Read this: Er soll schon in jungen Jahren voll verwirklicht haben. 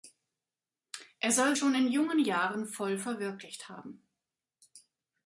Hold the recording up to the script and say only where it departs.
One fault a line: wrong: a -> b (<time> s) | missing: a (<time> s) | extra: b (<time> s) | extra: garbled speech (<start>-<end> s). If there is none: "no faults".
no faults